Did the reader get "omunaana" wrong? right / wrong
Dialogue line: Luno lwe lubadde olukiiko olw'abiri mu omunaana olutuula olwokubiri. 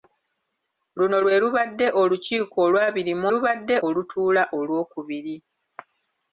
wrong